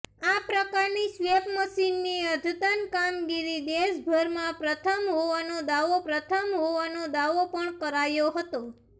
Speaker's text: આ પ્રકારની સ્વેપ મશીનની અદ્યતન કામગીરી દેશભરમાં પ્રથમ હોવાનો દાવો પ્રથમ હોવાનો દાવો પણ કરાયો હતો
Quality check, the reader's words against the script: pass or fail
pass